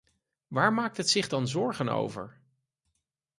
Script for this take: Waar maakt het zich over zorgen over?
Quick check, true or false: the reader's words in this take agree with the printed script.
false